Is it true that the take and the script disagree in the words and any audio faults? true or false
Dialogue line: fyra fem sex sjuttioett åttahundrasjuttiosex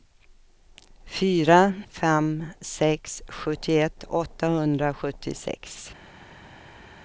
false